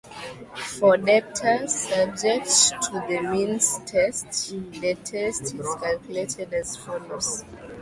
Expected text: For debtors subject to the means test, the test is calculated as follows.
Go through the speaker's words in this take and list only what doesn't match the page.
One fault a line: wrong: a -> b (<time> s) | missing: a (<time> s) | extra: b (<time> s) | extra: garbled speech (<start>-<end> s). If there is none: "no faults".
no faults